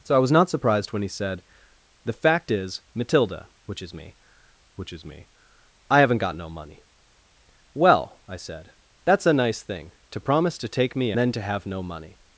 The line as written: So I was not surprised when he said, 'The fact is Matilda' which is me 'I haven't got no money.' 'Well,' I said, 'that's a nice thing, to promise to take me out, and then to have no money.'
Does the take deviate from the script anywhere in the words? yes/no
yes